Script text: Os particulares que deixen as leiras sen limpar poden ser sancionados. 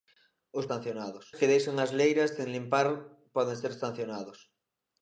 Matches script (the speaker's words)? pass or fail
fail